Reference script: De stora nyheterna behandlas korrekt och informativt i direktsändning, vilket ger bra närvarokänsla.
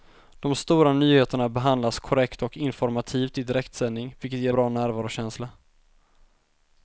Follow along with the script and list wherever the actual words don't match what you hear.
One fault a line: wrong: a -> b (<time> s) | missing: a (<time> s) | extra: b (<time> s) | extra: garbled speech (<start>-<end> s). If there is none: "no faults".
no faults